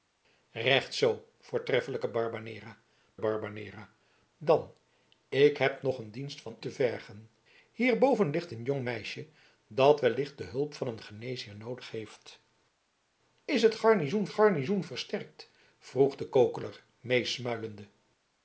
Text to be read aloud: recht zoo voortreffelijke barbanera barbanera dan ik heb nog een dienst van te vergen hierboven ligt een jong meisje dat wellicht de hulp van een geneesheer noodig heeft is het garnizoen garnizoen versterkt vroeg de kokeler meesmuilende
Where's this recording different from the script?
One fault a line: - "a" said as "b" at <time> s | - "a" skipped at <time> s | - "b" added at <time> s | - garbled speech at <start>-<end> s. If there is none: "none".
none